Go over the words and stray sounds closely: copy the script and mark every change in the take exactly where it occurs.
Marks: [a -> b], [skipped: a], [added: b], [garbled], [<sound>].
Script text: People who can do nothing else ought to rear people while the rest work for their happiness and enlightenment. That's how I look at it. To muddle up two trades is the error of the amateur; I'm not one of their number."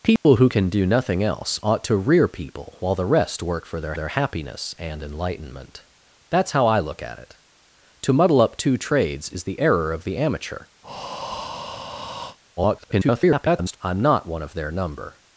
People [dropout] who can do nothing else ought to rear people while the rest work for their [added: their] happiness and enlightenment. That's how I look at it. To muddle up two trades is the error of the amateur; [breath] [garbled] I'm not one of their number."